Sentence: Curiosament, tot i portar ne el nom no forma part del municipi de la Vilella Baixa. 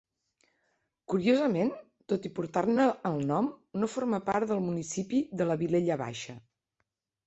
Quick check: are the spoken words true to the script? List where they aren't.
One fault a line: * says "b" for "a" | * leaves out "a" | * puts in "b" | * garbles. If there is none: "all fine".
all fine